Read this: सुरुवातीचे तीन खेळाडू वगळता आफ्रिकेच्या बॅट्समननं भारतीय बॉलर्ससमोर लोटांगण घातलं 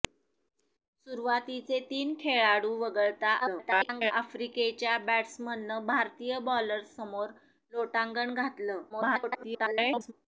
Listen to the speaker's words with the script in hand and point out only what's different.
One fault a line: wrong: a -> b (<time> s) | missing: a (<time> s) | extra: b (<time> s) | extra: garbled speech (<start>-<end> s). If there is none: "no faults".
extra: garbled speech (3.4-4.1 s)
extra: garbled speech (8.9-10.1 s)